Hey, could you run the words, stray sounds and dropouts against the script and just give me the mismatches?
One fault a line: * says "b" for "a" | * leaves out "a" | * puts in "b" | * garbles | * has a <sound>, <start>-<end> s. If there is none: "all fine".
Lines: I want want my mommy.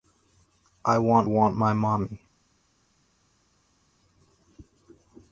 all fine